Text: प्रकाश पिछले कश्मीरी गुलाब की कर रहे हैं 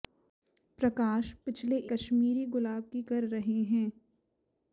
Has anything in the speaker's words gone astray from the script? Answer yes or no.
no